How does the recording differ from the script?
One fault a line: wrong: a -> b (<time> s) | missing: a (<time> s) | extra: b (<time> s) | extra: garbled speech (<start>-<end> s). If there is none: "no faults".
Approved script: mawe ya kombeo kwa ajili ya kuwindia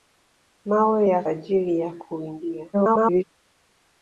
missing: kombeo kwa (1.2 s)
extra: garbled speech (2.7-3.2 s)